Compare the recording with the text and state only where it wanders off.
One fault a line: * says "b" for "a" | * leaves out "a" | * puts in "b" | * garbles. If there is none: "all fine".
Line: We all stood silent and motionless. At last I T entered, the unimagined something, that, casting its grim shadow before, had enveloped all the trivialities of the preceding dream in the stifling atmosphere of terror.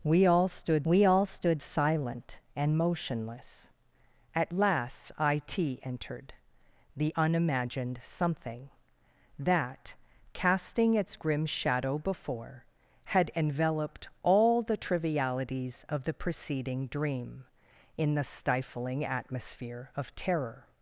* puts in "we all stood"